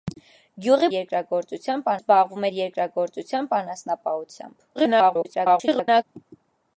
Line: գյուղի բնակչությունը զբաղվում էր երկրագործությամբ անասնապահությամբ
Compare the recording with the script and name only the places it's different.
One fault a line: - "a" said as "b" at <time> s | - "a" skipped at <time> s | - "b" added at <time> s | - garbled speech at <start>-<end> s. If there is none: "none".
- "բնակչությունը" said as "երկրագործությամբ" at 0.9 s
- garbled speech at 4.8-6.0 s